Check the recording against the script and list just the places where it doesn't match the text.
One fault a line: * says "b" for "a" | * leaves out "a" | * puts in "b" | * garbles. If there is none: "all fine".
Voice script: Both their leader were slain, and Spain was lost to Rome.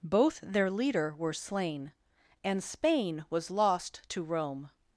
all fine